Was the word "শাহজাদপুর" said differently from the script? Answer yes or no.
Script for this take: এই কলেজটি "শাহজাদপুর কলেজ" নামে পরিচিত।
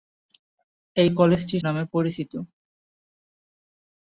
yes